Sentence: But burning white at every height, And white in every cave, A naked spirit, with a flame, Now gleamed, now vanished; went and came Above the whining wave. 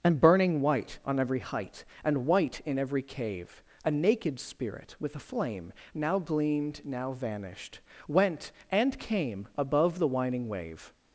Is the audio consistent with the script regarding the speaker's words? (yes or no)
no